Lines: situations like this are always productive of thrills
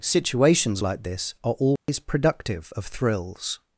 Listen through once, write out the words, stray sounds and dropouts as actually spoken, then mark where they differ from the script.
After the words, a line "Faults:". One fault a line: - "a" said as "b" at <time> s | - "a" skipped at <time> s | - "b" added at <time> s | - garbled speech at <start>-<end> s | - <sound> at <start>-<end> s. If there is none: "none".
situations like this are always productive of thrills
Faults:
- dropout at 1.8-1.9 s